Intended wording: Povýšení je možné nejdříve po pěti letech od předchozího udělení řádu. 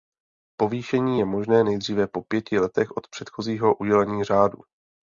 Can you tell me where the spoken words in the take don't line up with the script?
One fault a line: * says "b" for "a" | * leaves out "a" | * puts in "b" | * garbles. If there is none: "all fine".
all fine